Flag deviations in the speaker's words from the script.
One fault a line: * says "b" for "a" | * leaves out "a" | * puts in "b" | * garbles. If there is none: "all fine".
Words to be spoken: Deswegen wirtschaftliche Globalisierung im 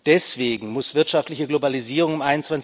* puts in "muss"